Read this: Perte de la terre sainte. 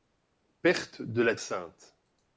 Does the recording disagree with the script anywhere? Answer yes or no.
yes